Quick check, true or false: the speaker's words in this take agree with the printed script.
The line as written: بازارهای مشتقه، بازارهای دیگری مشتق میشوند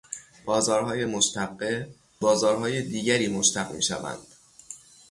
true